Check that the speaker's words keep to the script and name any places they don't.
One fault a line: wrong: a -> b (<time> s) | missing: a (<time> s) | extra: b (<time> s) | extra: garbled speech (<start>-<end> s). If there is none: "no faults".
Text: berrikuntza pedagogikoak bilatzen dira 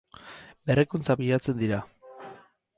missing: pedagogikoak (1.2 s)